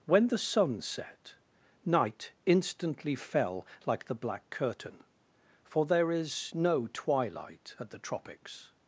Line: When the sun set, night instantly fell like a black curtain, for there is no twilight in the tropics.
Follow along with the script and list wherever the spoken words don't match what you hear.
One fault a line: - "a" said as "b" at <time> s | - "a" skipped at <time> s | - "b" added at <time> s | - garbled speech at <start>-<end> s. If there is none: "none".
- "a" said as "the" at 4.0 s
- "in" said as "at" at 7.8 s